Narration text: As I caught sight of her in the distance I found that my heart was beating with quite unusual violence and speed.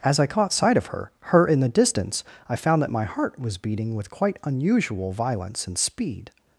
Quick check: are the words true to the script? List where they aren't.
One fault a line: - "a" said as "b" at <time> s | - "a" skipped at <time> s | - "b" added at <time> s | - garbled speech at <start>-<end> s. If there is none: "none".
- "her" added at 1.2 s